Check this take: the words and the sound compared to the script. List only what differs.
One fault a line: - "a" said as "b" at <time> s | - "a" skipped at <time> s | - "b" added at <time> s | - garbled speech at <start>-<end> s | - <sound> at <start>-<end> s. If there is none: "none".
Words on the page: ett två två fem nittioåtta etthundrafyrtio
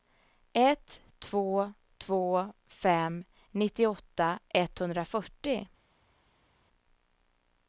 none